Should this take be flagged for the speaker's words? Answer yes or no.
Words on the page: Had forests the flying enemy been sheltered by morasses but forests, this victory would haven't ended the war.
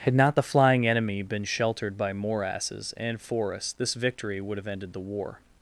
yes